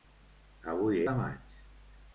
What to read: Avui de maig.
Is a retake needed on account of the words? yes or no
no